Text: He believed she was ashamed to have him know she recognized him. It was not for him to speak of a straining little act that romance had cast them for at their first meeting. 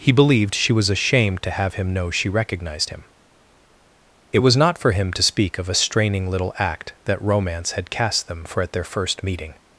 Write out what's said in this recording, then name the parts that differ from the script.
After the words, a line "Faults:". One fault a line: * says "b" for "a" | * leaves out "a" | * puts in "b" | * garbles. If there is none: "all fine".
He believed she was ashamed to have him know she recognized him. It was not for him to speak of a straining little act that romance had cast them for at their first meeting.
Faults:
all fine